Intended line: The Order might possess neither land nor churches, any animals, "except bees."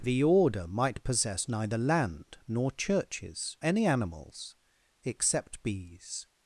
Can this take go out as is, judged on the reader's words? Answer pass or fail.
pass